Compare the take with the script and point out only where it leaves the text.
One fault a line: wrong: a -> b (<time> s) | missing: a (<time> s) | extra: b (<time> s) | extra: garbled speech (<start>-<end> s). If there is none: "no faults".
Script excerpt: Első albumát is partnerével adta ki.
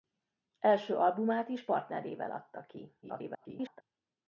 extra: garbled speech (3.0-3.8 s)